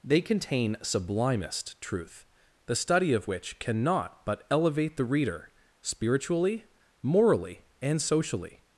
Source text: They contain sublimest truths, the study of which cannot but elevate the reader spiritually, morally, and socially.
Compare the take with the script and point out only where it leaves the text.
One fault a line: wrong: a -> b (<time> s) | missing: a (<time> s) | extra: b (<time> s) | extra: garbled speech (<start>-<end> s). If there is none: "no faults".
wrong: truths -> truth (1.8 s)